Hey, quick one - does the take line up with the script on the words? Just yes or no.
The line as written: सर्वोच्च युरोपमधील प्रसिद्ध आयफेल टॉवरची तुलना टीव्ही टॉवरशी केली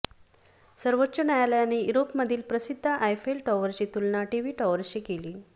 no